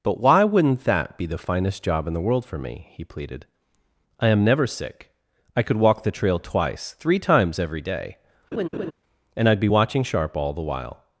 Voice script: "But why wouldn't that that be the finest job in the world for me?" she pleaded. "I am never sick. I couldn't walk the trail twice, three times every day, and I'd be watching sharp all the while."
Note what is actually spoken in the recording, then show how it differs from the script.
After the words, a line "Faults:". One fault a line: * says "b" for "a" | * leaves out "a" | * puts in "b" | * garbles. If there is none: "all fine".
"But why wouldn't that be the finest job in the world for me?" he pleaded. "I am never sick. I could walk the trail twice, three times every day, and I'd be watching sharp all the while."
Faults:
* leaves out "that"
* says "he" for "she"
* says "could" for "couldn't"